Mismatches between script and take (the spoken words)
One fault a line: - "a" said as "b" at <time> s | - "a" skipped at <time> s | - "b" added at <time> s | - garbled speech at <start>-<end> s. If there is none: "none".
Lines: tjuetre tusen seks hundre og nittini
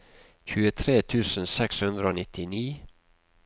none